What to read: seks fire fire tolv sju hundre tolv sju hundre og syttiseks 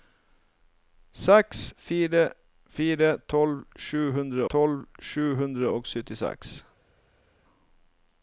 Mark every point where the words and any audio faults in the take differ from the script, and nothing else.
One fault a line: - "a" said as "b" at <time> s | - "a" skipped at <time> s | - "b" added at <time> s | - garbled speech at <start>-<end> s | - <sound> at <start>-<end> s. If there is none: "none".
none